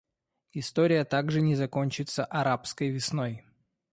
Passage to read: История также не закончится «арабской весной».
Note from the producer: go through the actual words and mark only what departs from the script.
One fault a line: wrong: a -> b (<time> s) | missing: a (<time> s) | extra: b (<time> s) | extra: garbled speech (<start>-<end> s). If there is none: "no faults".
no faults